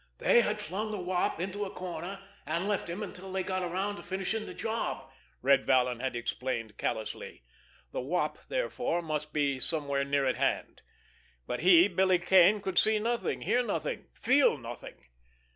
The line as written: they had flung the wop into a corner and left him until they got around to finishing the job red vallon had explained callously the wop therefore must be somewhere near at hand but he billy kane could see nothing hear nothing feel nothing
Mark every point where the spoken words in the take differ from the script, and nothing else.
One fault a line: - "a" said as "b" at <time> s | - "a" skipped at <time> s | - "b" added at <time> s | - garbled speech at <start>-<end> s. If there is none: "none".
none